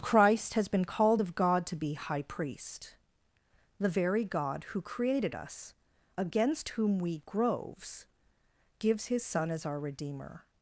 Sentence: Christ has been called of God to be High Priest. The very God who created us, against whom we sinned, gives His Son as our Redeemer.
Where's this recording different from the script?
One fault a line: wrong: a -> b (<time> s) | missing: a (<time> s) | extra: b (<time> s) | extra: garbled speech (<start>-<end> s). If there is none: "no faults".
wrong: sinned -> groves (7.3 s)